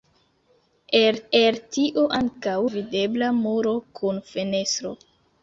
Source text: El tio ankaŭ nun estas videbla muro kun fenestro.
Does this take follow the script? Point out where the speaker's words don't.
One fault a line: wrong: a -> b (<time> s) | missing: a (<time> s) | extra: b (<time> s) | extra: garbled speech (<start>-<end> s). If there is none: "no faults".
extra: el (1.4 s)
missing: nun estas (2.5 s)